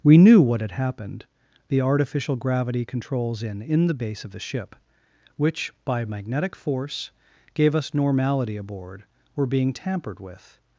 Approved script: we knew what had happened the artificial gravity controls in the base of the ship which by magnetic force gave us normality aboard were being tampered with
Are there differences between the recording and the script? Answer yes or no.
yes